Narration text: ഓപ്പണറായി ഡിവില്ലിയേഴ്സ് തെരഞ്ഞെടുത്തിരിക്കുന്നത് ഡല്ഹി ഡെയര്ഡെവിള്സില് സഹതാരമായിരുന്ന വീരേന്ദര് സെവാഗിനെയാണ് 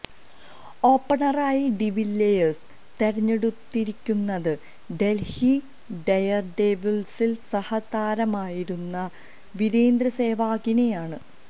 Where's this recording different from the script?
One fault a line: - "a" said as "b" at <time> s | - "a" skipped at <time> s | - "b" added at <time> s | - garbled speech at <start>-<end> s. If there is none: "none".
none